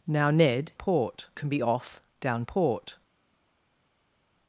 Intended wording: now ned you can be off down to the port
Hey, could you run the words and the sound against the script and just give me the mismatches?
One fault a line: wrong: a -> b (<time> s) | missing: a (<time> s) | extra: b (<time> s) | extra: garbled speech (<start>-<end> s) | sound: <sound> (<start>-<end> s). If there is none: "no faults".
wrong: you -> port (0.7 s)
missing: to the (2.4 s)